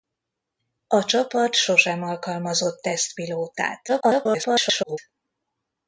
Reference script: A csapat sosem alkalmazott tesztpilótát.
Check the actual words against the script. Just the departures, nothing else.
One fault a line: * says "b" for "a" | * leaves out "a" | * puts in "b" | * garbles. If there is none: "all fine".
* garbles